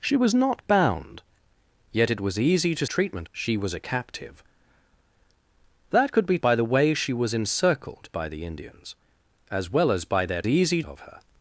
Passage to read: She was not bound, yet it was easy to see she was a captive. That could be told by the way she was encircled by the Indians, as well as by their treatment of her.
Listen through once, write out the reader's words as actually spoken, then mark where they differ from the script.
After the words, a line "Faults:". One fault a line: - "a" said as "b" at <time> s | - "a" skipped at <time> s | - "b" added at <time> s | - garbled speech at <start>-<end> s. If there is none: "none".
She was not bound, yet it was easy to treatment she was a captive. That could be by the way she was encircled by the Indians, as well as by their easy of her.
Faults:
- "see" said as "treatment" at 2.8 s
- "told" skipped at 6.4 s
- "treatment" said as "easy" at 10.5 s